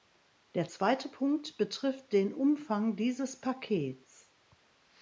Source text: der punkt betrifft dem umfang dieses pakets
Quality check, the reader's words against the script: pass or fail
fail